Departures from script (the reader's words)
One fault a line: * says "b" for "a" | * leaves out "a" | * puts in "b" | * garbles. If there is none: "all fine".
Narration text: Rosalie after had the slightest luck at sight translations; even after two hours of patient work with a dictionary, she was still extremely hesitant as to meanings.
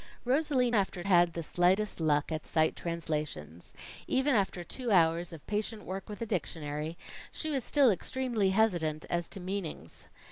all fine